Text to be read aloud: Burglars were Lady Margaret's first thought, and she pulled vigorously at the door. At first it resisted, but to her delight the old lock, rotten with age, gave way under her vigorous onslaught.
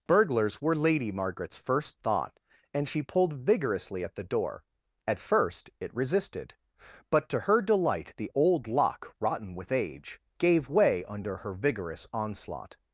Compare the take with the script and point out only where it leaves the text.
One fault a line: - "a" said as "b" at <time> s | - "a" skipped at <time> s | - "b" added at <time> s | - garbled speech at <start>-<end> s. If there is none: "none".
none